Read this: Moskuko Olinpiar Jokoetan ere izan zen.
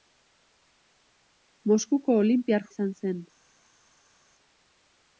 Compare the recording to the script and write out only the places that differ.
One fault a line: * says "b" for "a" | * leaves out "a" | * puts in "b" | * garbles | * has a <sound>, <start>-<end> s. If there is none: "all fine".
* leaves out "Jokoetan ere"